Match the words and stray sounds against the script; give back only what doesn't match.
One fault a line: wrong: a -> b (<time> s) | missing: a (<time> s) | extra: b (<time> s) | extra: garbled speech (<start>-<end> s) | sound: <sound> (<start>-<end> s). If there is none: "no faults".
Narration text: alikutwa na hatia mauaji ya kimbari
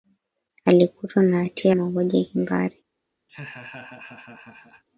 sound: laugh (3.3-4.8 s)